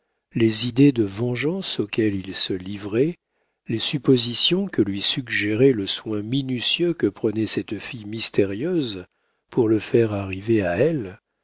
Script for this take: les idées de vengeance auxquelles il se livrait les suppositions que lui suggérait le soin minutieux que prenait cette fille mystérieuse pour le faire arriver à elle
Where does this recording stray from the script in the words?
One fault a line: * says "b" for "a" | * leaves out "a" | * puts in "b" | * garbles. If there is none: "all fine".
all fine